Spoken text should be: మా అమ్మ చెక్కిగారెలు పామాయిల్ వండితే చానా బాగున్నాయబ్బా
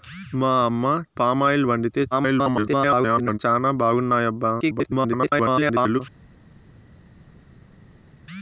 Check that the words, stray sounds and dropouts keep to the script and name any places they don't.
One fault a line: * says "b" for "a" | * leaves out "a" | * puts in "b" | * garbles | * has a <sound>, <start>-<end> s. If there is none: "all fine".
* leaves out "చెక్కిగారెలు"
* garbles
* garbles